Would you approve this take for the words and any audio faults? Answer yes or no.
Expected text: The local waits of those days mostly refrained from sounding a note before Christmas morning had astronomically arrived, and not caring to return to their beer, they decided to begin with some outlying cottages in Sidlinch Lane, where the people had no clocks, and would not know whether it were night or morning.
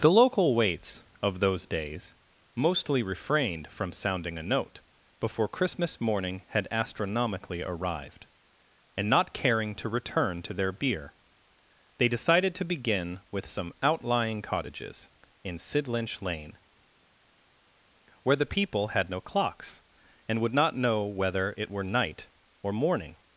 yes